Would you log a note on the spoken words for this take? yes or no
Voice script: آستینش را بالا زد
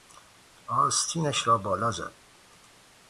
no